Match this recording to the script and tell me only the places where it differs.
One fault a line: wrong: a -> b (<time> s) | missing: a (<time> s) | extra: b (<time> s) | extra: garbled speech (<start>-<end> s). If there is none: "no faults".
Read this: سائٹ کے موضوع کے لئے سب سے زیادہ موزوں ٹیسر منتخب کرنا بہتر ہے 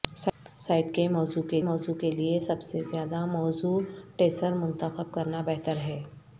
extra: موضوع کے (1.6 s)